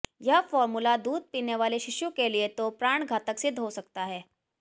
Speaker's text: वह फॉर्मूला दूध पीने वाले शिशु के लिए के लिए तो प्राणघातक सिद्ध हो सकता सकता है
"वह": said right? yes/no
no